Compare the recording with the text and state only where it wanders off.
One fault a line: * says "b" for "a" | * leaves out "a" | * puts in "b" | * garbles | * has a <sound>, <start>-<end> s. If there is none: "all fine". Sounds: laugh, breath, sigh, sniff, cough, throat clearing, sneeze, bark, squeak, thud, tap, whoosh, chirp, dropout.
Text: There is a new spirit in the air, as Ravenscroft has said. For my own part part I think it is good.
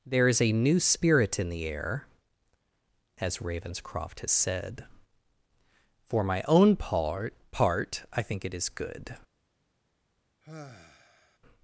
* has a sigh, 10.4-11.4 s